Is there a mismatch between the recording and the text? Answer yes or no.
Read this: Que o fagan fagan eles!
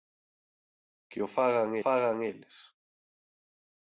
no